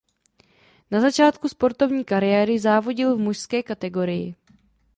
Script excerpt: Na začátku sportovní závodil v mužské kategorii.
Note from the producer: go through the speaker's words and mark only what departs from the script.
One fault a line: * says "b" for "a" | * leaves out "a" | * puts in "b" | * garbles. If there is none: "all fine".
* puts in "kariéry"